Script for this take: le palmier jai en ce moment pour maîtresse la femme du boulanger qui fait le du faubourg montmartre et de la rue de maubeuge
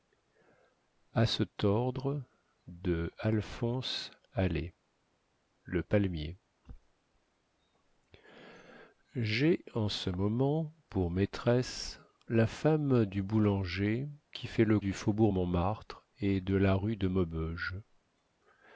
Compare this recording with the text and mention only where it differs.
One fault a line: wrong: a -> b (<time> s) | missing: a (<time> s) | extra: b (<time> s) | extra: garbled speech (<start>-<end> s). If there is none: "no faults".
no faults